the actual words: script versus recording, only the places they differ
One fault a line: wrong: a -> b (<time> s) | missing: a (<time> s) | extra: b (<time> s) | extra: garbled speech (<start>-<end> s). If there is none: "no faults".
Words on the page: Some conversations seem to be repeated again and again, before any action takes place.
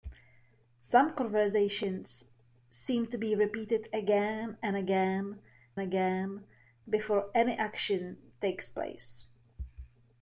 extra: again (5.8 s)